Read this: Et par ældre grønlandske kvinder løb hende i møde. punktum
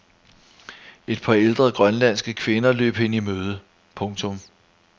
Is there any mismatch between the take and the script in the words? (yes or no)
no